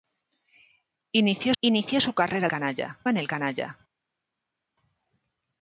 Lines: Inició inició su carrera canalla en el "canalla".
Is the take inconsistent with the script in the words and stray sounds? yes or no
no